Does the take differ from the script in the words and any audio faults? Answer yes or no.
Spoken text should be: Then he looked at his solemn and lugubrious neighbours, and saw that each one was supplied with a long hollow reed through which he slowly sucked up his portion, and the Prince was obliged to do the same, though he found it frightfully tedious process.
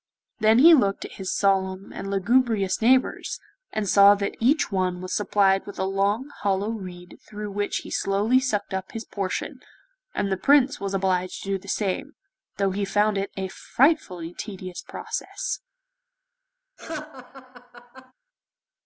yes